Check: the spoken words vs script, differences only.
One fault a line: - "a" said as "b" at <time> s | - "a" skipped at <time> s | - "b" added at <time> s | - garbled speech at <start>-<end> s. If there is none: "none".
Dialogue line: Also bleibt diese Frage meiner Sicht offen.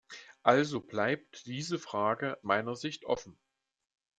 none